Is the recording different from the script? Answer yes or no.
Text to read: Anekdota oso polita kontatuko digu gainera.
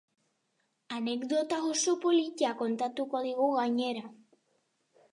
no